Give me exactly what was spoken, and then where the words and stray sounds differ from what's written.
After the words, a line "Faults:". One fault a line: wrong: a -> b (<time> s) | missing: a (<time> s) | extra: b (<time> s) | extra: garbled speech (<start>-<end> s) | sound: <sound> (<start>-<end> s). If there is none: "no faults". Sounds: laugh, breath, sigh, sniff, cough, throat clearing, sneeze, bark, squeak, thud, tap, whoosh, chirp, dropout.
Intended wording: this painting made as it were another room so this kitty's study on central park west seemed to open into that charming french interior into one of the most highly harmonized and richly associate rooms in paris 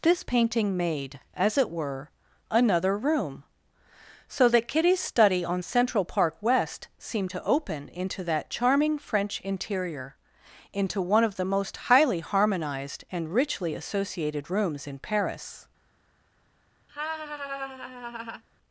this painting made as it were another room so that kitty's study on central park west seemed to open into that charming french interior into one of the most highly harmonized and richly associated rooms in paris
Faults:
wrong: this -> that (4.5 s)
wrong: associate -> associated (13.7 s)
sound: laugh (16.9-18.4 s)